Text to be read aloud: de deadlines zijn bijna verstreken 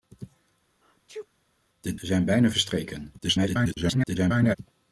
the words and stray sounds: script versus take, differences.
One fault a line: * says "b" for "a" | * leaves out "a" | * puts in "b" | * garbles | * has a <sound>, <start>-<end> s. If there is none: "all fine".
* has a sneeze, 0.8-1.3 s
* leaves out "deadlines"
* garbles